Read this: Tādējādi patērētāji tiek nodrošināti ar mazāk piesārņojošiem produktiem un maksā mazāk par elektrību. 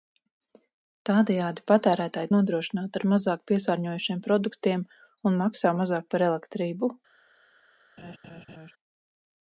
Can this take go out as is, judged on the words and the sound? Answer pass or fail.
fail